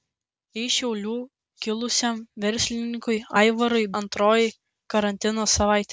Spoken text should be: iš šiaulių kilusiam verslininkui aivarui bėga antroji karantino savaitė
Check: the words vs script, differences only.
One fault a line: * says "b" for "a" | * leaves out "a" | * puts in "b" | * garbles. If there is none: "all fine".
* leaves out "bėga"